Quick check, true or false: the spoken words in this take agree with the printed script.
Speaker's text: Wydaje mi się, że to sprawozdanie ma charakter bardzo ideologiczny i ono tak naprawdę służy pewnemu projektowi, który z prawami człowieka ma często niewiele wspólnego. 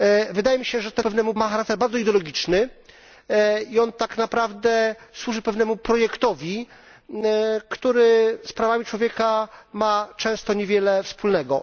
false